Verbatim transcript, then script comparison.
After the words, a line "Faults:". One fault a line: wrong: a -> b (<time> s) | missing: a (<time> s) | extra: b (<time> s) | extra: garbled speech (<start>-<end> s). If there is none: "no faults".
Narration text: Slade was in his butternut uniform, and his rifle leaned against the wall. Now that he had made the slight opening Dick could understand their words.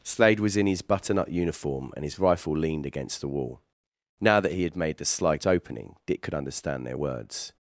Slade was in his butternut uniform, and his rifle leaned against the wall. Now that he had made the slight opening Dick could understand their words.
Faults:
no faults